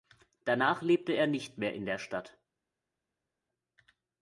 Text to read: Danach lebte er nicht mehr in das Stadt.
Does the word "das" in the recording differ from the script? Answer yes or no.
yes